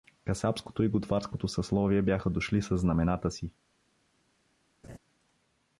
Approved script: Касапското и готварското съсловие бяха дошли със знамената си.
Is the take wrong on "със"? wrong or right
right